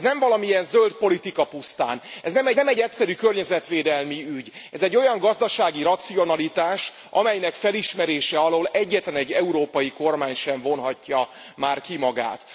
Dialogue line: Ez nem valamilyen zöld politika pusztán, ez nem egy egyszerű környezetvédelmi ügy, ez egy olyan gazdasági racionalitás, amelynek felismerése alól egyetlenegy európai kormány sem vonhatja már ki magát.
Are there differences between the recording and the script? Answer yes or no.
yes